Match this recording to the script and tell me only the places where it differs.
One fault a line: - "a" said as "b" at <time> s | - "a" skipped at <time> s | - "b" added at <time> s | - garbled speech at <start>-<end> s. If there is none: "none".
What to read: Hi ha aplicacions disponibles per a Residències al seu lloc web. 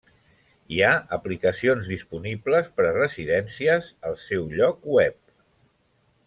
none